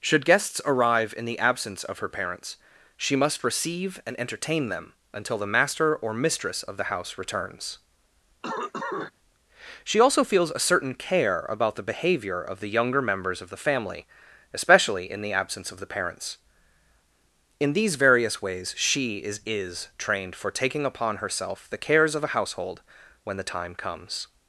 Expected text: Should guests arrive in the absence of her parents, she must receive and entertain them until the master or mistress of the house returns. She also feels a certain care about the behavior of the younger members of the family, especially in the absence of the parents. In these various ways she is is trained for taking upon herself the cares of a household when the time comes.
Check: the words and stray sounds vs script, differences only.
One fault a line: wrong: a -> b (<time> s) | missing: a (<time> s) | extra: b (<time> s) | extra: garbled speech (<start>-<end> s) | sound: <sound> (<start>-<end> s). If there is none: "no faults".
sound: cough (8.4-9.1 s)